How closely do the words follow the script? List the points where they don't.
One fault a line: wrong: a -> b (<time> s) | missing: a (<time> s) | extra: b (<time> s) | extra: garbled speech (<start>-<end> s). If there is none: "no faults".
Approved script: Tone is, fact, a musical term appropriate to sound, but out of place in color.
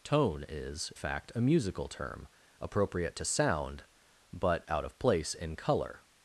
no faults